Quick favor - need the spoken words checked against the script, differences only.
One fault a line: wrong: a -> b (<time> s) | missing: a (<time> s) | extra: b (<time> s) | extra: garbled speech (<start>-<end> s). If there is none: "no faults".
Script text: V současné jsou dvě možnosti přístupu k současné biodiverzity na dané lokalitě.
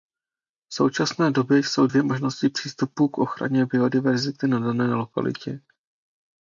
extra: době (1.3 s)
wrong: současné -> ochraně (3.2 s)